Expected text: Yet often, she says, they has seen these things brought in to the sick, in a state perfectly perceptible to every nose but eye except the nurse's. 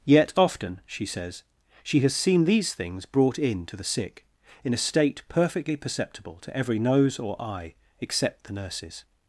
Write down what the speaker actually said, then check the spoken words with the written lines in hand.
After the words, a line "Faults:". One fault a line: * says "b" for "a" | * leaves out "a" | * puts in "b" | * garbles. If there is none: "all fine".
Yet often, she says, she has seen these things brought in to the sick, in a state perfectly perceptible to every nose or eye except the nurse's.
Faults:
* says "she" for "they"
* says "or" for "but"